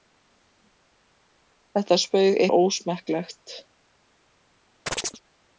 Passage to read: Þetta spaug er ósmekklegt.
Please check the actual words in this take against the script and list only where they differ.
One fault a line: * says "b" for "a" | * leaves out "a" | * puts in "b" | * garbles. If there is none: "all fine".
all fine